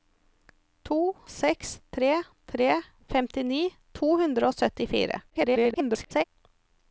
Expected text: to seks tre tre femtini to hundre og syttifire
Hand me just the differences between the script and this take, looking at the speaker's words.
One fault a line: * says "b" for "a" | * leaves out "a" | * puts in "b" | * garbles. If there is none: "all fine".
* garbles